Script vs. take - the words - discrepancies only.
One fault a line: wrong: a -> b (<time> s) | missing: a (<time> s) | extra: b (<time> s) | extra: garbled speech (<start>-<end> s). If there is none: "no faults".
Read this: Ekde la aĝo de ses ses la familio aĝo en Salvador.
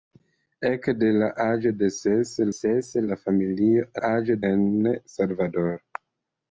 no faults